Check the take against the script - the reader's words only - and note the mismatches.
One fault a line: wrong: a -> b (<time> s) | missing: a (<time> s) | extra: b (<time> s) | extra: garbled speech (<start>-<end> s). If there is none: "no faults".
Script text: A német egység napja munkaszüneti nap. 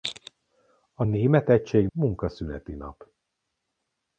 missing: napja (1.9 s)